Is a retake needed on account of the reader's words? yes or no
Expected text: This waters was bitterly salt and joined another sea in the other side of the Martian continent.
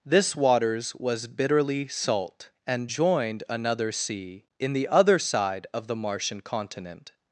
no